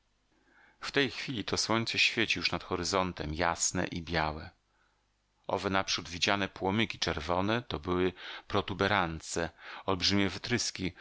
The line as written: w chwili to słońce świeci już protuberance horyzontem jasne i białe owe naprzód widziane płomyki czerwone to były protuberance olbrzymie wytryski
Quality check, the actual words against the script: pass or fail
fail